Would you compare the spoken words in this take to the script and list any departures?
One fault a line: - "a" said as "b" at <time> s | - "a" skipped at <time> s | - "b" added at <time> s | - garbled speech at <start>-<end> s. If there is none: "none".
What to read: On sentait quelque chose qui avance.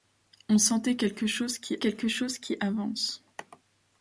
- "quelque chose qui" added at 1.8 s